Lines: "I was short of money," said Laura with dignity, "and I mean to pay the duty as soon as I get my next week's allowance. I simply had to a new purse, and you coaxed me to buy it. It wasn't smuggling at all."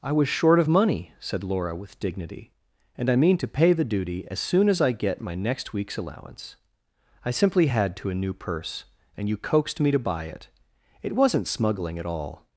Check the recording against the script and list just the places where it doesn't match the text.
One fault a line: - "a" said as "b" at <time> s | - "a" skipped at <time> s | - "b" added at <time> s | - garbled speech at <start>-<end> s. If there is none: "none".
none